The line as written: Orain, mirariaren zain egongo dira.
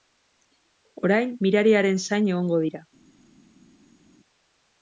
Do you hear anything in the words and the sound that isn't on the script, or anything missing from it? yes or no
no